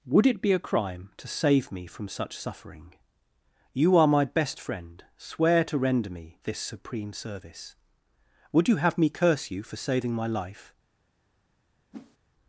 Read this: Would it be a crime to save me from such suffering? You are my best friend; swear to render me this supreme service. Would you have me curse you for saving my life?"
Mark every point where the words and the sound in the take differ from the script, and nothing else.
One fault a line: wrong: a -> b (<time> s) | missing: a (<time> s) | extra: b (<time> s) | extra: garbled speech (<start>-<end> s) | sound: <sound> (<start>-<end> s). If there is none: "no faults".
sound: whoosh (11.9-12.2 s)